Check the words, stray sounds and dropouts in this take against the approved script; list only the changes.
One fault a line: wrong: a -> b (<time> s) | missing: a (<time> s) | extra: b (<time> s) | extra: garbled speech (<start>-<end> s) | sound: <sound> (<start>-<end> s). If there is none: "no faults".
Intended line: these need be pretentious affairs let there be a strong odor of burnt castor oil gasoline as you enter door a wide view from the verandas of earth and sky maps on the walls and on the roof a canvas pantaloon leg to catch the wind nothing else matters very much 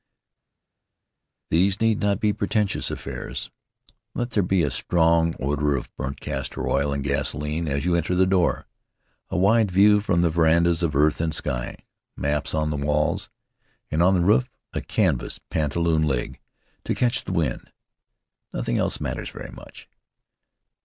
extra: not (2.0 s)
extra: and (6.9 s)
extra: the (8.1 s)